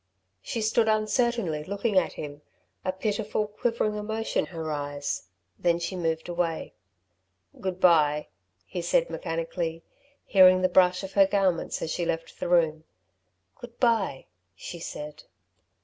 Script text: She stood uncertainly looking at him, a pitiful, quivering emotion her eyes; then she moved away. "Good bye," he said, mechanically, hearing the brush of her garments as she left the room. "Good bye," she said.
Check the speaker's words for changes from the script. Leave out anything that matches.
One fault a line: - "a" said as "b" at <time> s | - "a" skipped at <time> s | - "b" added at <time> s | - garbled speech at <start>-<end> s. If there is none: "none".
none